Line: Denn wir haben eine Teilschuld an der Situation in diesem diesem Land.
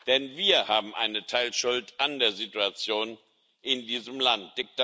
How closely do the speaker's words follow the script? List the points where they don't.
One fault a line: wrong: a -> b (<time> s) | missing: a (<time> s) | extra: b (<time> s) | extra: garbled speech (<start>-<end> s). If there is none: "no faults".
missing: diesem (4.2 s)